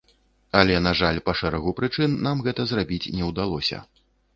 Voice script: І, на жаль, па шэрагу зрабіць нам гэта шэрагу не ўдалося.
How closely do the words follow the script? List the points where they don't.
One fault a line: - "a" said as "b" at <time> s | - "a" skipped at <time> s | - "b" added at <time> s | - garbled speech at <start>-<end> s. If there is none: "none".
- "І" said as "Але" at 0.6 s
- "зрабіць" said as "прычын" at 1.8 s
- "шэрагу" said as "зрабіць" at 2.8 s